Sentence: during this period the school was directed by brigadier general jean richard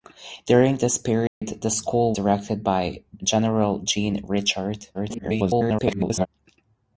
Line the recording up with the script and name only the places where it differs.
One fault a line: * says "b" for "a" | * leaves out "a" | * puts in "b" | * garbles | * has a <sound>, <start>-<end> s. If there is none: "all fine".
* has a dropout, 1.3-1.4 s
* leaves out "was"
* leaves out "brigadier"
* garbles